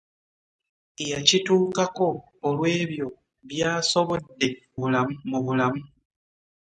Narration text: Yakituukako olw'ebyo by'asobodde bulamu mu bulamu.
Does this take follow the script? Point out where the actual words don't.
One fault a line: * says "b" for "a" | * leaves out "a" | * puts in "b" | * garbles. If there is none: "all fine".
all fine